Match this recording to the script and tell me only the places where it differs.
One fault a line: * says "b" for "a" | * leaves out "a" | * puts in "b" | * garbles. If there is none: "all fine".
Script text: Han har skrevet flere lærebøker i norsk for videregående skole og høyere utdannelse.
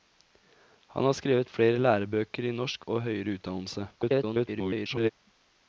* leaves out "for videregående skole"
* garbles